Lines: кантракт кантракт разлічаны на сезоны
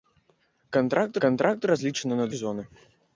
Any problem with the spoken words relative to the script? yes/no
no